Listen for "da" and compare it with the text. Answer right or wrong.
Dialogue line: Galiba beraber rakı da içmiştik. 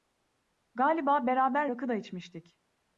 right